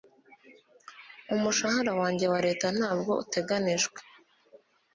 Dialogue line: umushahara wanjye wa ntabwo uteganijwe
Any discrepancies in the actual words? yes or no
yes